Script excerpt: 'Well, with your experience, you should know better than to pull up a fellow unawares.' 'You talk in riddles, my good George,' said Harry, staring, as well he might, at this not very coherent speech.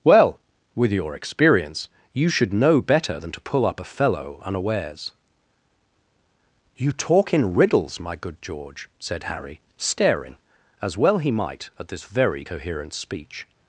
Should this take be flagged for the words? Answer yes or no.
yes